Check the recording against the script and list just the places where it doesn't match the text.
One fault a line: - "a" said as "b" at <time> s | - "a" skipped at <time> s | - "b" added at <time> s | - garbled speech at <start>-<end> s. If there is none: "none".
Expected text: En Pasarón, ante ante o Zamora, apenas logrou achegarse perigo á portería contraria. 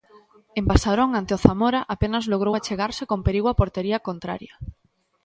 - "ante" skipped at 1.3 s
- "con" added at 3.1 s